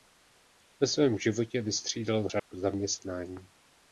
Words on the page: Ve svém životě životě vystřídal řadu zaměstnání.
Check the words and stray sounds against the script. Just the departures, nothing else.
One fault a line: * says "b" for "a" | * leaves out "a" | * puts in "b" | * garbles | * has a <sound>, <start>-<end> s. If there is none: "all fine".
* leaves out "životě"
* has a dropout, 2.4-2.5 s